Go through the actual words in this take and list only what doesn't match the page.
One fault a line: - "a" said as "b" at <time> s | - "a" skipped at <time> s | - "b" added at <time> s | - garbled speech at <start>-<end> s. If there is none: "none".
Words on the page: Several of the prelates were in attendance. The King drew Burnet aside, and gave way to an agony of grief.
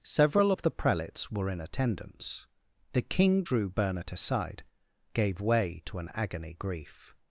- "and" skipped at 4.6 s
- "of" skipped at 6.5 s